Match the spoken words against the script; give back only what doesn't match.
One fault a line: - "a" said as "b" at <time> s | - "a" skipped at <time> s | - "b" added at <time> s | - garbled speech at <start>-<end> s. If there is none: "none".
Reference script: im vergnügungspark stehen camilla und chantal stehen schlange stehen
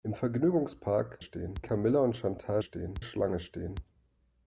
none